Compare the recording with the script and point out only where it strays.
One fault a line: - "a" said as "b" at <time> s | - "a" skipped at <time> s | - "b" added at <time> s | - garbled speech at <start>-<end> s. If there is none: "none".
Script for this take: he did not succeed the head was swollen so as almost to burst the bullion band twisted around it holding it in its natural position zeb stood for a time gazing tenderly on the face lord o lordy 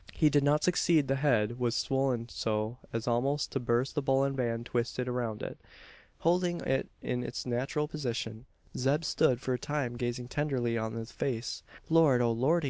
none